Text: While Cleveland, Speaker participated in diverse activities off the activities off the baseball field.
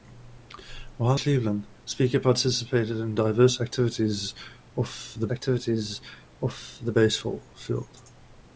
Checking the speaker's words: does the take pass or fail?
pass